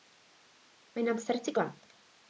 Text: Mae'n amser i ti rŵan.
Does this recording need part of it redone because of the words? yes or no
no